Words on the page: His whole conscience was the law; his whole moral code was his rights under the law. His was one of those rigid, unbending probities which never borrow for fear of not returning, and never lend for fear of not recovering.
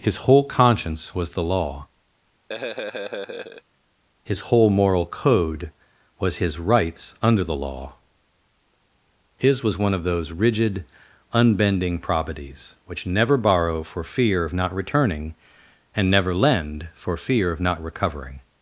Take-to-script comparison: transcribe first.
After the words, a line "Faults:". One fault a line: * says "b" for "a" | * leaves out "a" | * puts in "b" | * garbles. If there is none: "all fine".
His whole conscience was the law; his whole moral code was his rights under the law. His was one of those rigid, unbending probities which never borrow for fear of not returning, and never lend for fear of not recovering.
Faults:
all fine